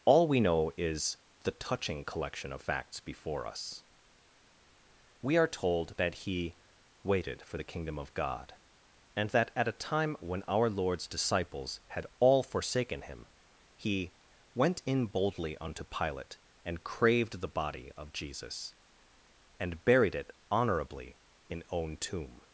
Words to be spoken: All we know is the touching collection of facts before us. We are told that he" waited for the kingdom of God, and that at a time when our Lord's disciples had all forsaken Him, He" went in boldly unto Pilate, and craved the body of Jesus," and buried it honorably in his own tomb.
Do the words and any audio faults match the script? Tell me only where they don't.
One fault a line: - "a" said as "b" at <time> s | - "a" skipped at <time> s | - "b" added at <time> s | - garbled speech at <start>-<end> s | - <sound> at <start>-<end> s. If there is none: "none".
- "his" skipped at 21.6 s